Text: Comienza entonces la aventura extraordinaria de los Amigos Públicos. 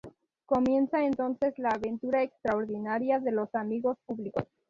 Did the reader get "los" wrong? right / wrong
right